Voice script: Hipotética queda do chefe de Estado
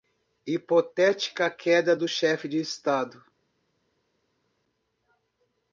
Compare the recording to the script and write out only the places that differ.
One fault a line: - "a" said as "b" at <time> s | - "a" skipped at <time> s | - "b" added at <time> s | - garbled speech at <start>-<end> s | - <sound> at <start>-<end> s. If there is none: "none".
none